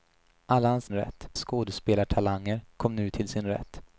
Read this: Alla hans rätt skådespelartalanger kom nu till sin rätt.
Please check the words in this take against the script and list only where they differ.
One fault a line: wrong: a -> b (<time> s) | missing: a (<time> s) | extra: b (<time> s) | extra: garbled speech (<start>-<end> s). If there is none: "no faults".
no faults